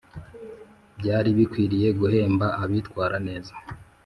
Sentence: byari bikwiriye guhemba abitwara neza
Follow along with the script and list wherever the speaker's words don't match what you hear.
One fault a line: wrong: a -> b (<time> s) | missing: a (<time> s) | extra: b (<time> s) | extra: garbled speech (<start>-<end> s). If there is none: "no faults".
no faults